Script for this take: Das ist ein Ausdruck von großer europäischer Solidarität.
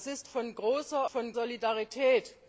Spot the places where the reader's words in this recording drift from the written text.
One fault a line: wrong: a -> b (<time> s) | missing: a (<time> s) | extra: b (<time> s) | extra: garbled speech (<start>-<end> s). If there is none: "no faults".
missing: ein Ausdruck (0.3 s)
wrong: europäischer -> von (1.1 s)